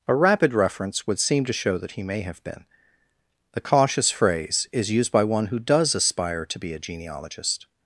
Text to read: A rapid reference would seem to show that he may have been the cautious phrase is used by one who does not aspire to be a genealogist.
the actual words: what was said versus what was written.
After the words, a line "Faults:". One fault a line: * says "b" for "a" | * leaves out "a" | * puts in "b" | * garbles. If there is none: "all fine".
A rapid reference would seem to show that he may have been the cautious phrase is used by one who does aspire to be a genealogist.
Faults:
* leaves out "not"